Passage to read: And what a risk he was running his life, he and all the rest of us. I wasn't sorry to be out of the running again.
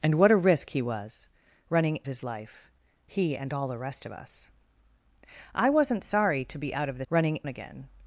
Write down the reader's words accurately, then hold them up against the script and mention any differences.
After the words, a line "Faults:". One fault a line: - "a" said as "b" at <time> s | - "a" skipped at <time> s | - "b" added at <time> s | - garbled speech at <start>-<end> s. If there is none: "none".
And what a risk he was running his life, he and all the rest of us. I wasn't sorry to be out of the running again.
Faults:
none